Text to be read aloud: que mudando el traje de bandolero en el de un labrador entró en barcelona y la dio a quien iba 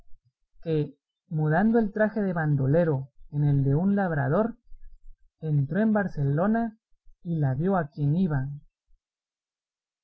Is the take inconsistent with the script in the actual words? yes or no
no